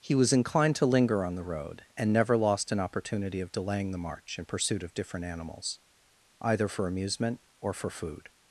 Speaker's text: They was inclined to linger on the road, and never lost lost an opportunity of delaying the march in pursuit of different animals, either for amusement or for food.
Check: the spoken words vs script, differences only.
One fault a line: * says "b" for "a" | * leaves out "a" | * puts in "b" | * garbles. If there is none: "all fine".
* says "He" for "They"
* leaves out "lost"